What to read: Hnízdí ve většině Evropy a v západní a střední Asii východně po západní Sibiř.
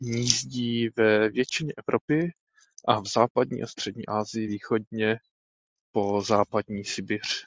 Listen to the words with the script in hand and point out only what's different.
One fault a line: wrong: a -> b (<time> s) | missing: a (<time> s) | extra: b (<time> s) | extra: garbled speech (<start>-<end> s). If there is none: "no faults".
no faults